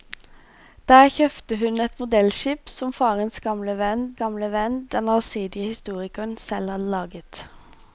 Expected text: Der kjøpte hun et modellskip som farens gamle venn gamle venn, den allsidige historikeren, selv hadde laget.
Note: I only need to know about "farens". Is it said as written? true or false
true